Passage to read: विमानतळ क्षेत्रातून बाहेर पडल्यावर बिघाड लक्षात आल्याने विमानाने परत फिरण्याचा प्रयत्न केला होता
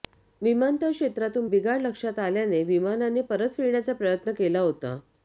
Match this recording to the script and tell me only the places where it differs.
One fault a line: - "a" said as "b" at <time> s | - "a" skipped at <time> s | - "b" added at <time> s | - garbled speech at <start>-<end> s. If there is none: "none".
- "बाहेर पडल्यावर" skipped at 1.5 s